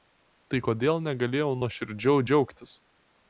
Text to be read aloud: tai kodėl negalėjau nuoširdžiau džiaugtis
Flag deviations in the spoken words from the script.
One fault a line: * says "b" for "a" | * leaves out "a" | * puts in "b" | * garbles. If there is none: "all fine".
all fine